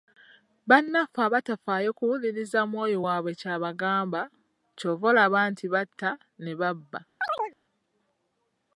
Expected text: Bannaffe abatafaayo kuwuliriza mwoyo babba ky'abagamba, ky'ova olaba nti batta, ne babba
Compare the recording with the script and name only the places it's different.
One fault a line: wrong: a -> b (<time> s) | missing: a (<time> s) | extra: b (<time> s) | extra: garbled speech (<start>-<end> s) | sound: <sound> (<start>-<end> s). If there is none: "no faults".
wrong: babba -> waabwe (3.0 s)
sound: chirp (7.2-7.6 s)